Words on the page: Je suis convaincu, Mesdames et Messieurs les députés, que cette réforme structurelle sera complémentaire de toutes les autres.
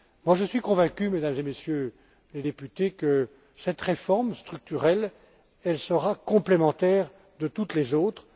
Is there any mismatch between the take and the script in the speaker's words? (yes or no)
no